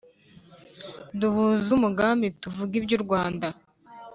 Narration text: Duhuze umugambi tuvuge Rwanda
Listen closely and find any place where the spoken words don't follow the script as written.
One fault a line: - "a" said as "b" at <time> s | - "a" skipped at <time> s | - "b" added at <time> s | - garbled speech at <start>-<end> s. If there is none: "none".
- "iby'u" added at 2.8 s